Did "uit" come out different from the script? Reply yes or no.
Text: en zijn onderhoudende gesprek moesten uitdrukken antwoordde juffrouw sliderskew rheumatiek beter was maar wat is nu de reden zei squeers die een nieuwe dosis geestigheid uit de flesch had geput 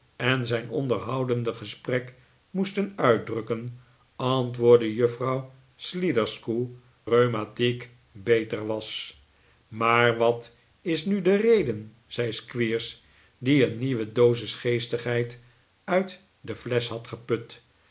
no